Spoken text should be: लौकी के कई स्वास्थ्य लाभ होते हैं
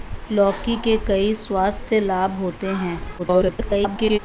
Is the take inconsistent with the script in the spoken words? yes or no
yes